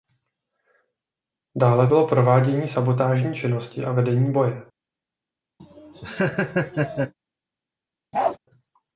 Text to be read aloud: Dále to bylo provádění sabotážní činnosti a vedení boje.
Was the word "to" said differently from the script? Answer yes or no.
yes